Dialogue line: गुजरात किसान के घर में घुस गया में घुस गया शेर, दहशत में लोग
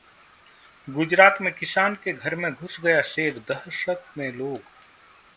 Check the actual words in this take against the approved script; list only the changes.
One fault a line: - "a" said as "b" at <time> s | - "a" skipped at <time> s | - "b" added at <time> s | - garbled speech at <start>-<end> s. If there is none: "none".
- "में" added at 1.4 s
- "में घुस गया" skipped at 3.0 s